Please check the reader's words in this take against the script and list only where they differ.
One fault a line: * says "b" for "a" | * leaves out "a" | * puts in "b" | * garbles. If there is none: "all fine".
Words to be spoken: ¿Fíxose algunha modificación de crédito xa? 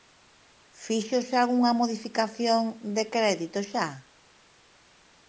all fine